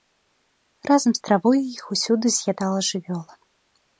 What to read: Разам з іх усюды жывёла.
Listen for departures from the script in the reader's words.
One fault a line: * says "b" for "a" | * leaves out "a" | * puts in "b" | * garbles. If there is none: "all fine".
* puts in "травой"
* puts in "з'ядала"